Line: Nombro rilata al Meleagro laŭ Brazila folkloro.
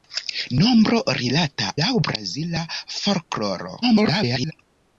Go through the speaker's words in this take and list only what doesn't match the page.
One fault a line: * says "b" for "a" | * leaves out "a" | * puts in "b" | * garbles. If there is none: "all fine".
* leaves out "al Meleagro"
* garbles